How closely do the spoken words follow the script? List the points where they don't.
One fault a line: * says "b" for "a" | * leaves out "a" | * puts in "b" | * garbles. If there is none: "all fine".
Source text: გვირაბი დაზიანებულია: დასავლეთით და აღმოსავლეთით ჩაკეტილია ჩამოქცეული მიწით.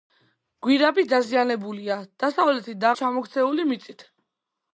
* leaves out "აღმოსავლეთით ჩაკეტილია"